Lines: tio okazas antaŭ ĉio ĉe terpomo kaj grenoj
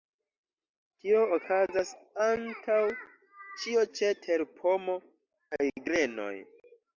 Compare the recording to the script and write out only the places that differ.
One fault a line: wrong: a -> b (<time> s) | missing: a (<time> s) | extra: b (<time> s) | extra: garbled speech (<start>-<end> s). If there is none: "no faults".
no faults